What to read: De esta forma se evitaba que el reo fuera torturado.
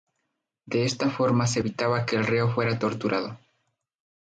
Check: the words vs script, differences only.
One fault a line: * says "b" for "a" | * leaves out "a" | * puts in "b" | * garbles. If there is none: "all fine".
all fine